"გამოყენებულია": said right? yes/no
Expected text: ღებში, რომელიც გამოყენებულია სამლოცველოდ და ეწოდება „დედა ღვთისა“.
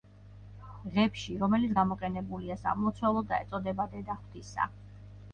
yes